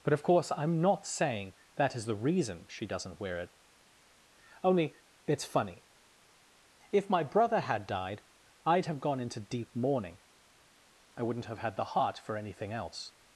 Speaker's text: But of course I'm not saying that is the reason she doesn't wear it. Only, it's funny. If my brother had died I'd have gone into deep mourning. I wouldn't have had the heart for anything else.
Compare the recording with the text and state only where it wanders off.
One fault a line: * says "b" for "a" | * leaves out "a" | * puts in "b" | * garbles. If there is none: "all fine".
all fine